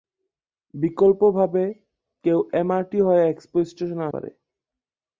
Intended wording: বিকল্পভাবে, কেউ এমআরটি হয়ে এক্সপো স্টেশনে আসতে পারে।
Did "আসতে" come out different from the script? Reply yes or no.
yes